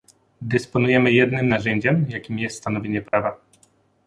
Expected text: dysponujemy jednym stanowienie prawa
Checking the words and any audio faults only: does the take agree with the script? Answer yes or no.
no